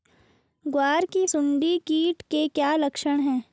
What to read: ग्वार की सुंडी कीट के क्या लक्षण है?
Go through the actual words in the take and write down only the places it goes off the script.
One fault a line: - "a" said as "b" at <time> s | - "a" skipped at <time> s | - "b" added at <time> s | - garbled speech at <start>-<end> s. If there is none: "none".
none